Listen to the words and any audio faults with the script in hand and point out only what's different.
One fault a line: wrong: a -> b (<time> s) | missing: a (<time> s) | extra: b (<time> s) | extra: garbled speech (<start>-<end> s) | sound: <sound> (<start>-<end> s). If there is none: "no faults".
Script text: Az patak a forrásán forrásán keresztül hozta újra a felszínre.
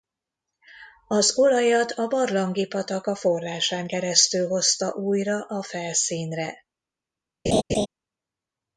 extra: olajat a barlangi (1.4 s)
missing: forrásán (3.9 s)
sound: laugh (7.5-7.9 s)